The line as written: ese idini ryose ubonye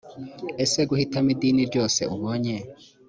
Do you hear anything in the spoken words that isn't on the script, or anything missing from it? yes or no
yes